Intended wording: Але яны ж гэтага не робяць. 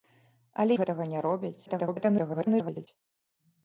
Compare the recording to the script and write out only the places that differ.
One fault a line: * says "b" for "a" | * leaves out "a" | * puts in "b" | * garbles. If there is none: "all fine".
* leaves out "яны"
* garbles